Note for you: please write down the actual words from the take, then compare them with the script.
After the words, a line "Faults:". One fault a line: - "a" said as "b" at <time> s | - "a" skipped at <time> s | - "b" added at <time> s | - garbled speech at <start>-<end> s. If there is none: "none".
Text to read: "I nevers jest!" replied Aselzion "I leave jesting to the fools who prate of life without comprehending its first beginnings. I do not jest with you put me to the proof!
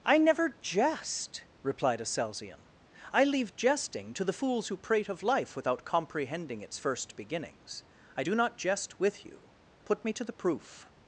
"I never jest!" replied Aselzion "I leave jesting to the fools who prate of life without comprehending its first beginnings. I do not jest with you put me to the proof!
Faults:
- "nevers" said as "never" at 0.2 s